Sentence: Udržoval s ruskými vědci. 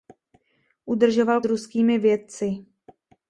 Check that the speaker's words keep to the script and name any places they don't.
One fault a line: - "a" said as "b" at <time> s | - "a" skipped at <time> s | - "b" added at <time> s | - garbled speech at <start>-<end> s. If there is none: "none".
none